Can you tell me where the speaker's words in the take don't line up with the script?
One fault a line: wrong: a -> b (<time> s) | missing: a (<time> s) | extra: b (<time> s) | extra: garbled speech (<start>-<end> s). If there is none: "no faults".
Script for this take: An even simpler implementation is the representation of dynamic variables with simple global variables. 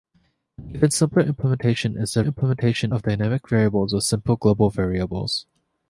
wrong: representation -> implementation (2.2 s)